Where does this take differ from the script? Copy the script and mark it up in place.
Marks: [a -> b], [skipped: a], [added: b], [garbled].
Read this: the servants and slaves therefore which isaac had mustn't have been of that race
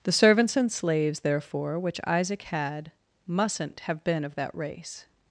the servants and slaves therefore which isaac had mustn't have been of that race